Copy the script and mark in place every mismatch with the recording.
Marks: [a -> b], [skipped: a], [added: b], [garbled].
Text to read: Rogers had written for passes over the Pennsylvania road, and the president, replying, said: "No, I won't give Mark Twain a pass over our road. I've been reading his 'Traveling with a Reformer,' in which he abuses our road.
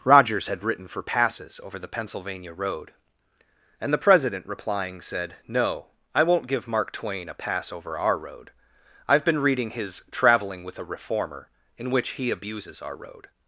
Rogers had written for passes over the Pennsylvania road, and the president, replying, said: "No, I won't give Mark Twain a pass over our road. I've been reading his 'Traveling with a Reformer,' in which he abuses our road.